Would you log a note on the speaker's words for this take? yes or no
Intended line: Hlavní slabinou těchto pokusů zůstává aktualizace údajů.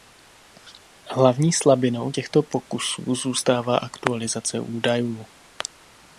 no